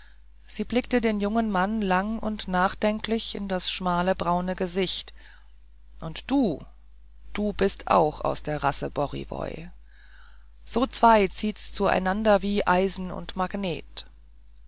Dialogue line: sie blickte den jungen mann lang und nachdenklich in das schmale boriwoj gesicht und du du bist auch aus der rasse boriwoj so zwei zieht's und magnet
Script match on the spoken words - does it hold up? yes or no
no